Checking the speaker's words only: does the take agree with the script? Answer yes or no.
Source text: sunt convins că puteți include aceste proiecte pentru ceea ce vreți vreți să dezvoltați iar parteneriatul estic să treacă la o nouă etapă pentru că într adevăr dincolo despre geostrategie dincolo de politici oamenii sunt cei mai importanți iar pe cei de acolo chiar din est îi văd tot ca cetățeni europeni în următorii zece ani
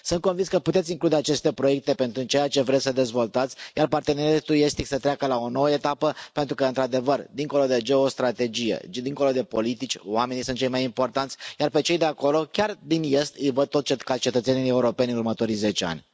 no